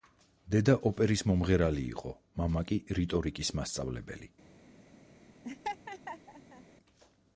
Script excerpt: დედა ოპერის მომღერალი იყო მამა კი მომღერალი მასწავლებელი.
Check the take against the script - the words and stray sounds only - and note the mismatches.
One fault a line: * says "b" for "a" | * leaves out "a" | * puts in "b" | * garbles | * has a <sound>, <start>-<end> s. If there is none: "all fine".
* says "რიტორიკის" for "მომღერალი"
* has a laugh, 5.4-6.6 s